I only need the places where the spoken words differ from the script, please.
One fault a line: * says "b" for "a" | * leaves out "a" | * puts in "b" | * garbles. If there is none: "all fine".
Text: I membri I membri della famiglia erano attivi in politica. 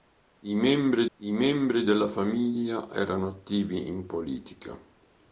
all fine